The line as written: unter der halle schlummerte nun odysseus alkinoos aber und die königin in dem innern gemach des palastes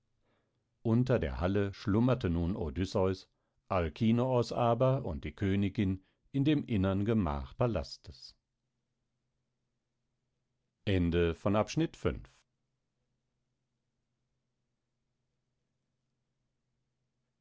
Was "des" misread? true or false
true